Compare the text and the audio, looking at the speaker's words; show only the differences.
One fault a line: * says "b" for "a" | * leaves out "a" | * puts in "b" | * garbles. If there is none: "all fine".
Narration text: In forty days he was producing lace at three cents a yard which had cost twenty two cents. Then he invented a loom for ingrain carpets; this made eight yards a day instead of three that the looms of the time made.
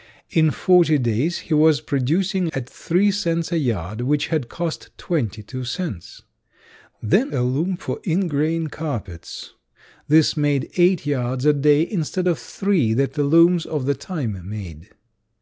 * leaves out "lace"
* leaves out "he invented"